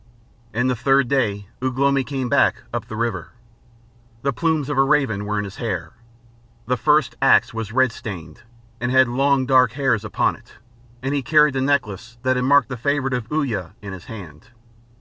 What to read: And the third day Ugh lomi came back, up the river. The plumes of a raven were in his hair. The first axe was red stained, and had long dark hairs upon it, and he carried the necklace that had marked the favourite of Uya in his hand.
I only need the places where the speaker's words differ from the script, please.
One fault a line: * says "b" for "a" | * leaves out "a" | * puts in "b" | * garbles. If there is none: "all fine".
all fine